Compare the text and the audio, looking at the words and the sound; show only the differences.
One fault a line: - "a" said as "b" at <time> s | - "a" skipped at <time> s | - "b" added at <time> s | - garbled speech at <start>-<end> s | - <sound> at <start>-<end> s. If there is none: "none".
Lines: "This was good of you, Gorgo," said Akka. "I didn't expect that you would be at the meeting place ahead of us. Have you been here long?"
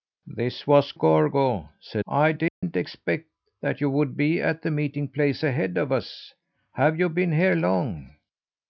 - "good of you" skipped at 0.9 s
- "Akka" skipped at 2.0 s
- dropout at 2.5-2.6 s